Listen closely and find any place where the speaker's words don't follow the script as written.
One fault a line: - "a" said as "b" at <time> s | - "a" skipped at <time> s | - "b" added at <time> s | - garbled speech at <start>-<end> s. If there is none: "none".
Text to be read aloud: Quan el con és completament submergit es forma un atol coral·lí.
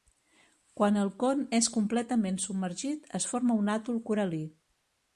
none